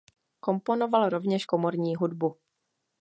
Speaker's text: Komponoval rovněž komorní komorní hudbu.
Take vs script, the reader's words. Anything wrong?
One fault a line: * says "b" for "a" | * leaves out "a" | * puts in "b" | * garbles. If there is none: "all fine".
* leaves out "komorní"